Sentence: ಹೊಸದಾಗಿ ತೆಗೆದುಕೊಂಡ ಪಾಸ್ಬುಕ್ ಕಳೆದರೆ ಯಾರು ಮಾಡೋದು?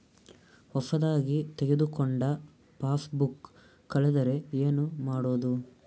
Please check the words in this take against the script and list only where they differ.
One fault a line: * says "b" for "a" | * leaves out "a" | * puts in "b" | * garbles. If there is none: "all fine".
* says "ಏನು" for "ಯಾರು"